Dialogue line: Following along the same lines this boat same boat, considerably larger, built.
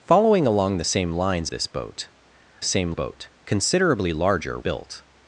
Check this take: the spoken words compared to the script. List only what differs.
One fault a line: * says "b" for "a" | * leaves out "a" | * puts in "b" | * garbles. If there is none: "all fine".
all fine